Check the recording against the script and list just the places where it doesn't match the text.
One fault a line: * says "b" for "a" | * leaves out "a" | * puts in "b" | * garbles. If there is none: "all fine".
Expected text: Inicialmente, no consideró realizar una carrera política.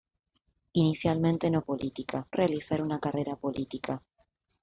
* says "política" for "consideró"